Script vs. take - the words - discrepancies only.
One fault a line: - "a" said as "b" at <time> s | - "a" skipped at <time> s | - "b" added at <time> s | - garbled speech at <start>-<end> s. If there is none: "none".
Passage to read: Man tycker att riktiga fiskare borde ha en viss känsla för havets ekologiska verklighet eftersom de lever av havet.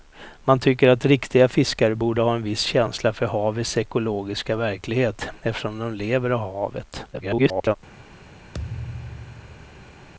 - garbled speech at 7.1-7.8 s